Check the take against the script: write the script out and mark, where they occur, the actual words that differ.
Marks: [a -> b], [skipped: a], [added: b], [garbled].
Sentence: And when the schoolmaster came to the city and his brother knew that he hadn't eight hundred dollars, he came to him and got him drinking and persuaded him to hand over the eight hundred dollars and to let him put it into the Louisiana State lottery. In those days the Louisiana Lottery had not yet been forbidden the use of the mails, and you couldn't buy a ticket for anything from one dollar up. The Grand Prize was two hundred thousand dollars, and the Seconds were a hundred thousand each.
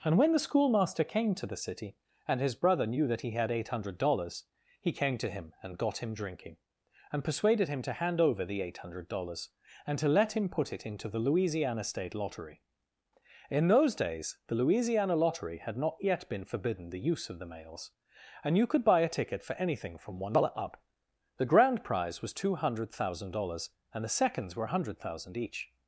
And when the schoolmaster came to the city and his brother knew that he [hadn't -> had] eight hundred dollars, he came to him and got him drinking and persuaded him to hand over the eight hundred dollars and to let him put it into the Louisiana State lottery. In those days the Louisiana Lottery had not yet been forbidden the use of the mails, and you [couldn't -> could] buy a ticket for anything from one dollar up. The Grand Prize was two hundred thousand dollars, and the Seconds were a hundred thousand each.